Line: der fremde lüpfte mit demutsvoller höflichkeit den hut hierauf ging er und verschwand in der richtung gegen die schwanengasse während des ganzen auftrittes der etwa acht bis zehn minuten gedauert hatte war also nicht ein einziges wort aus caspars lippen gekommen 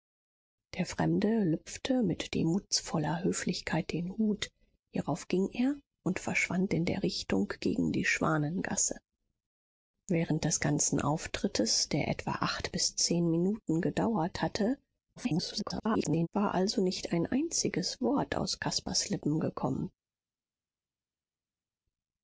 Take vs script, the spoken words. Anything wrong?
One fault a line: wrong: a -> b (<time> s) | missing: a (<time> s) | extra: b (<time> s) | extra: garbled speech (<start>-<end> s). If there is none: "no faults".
extra: garbled speech (15.2-16.3 s)